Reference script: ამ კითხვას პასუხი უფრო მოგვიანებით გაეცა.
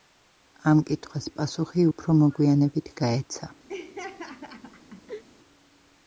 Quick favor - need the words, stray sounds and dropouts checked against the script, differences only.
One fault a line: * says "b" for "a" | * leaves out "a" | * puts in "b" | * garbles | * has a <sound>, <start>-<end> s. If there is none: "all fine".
* has a laugh, 3.7-5.2 s